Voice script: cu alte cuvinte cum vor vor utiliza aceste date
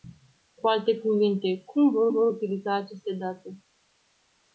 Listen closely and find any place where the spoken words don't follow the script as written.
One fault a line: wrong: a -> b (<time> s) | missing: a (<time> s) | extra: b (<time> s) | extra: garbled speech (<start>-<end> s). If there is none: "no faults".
no faults